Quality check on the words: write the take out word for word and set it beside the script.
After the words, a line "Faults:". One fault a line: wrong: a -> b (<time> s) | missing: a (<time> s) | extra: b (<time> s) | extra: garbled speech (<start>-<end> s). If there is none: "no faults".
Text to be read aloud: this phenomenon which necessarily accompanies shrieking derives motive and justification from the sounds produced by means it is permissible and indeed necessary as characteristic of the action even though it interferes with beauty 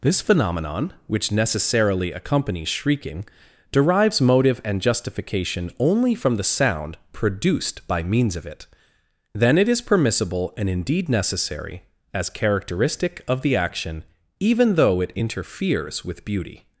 this phenomenon which necessarily accompanies shrieking derives motive and justification only from the sound produced by means of it then it is permissible and indeed necessary as characteristic of the action even though it interferes with beauty
Faults:
extra: only (5.8 s)
wrong: sounds -> sound (6.4 s)
extra: of it then (8.3 s)